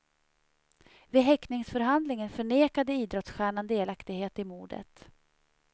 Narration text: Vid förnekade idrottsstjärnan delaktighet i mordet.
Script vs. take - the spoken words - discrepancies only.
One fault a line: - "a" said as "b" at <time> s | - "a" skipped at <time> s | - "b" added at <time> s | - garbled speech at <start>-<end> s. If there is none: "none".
- "häktningsförhandlingen" added at 1.2 s